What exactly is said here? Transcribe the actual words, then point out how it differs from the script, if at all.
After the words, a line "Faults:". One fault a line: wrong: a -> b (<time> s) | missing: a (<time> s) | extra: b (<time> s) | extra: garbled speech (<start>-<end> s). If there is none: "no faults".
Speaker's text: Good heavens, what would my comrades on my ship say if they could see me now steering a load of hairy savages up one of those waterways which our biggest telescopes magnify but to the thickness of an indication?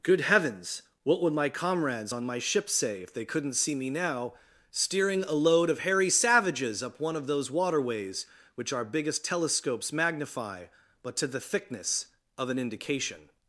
Good heavens, what would my comrades on my ship say if they couldn't see me now steering a load of hairy savages up one of those waterways which our biggest telescopes magnify but to the thickness of an indication?
Faults:
wrong: could -> couldn't (3.3 s)